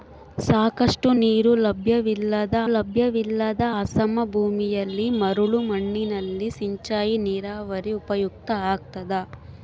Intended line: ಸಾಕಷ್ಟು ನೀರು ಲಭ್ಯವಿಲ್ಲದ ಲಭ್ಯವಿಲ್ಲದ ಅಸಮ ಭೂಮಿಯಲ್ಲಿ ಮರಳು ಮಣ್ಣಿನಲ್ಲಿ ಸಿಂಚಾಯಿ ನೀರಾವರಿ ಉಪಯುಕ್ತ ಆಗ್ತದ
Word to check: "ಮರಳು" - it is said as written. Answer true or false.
true